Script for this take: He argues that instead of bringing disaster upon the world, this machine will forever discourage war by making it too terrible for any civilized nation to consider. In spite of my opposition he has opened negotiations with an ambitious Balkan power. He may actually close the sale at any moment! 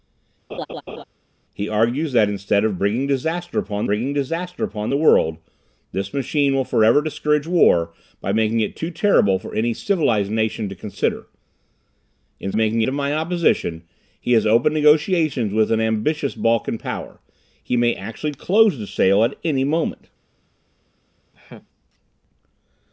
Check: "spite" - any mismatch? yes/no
yes